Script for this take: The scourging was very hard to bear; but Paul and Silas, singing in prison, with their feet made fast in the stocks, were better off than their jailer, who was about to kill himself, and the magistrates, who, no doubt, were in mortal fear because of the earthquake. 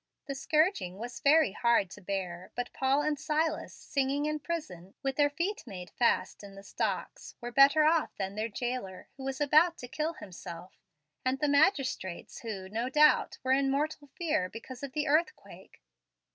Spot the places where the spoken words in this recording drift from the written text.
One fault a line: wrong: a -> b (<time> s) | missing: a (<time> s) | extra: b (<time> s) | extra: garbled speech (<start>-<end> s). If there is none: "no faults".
no faults